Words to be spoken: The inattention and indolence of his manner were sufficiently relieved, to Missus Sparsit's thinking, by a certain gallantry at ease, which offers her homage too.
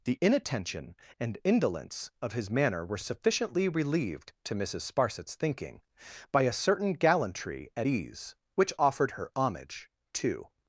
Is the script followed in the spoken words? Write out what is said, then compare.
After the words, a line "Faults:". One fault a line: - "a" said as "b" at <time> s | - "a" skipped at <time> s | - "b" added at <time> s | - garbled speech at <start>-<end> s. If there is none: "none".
The inattention and indolence of his manner were sufficiently relieved, to Missus Sparsit's thinking, by a certain gallantry at ease, which offered her homage too.
Faults:
- "offers" said as "offered" at 8.8 s